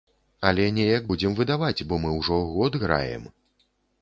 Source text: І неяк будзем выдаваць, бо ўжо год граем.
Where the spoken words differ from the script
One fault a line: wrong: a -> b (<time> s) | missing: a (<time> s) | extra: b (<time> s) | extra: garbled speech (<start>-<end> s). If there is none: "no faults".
wrong: І -> Але (0.5 s)
extra: мы (2.0 s)